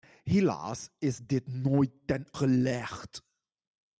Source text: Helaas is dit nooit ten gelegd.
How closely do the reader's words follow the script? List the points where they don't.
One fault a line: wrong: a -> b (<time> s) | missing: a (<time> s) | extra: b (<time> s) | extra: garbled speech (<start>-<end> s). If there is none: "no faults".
no faults